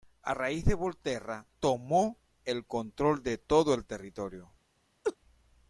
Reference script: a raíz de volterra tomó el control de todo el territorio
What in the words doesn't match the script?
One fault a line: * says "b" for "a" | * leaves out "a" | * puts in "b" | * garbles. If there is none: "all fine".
all fine